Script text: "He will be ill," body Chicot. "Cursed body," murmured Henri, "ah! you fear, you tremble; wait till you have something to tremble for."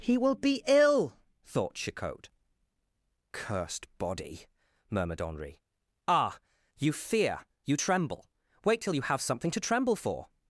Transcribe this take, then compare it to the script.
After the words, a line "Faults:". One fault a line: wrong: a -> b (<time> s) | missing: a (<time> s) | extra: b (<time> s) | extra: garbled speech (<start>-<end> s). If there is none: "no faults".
"He will be ill," thought Chicot. "Cursed body," murmured Henri, "ah! you fear, you tremble; wait till you have something to tremble for."
Faults:
wrong: body -> thought (1.4 s)